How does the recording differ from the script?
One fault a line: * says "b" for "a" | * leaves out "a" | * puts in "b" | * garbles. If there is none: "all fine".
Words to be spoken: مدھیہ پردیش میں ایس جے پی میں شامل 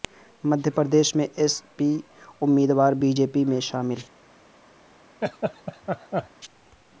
* puts in "پی امیدوار بی"